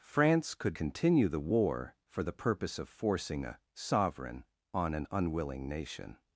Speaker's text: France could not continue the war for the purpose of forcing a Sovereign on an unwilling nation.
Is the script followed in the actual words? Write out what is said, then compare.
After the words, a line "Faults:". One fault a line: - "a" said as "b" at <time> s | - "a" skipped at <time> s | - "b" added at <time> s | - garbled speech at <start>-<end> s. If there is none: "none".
France could continue the war for the purpose of forcing a Sovereign on an unwilling nation.
Faults:
- "not" skipped at 0.8 s